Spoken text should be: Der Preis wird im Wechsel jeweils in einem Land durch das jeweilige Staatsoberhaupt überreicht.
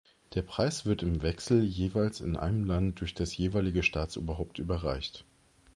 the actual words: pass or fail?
pass